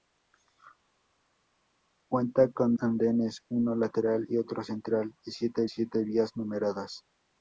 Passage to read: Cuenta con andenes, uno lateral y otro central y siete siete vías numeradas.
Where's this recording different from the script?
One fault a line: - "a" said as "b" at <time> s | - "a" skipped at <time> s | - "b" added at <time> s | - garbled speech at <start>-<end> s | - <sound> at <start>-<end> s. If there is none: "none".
none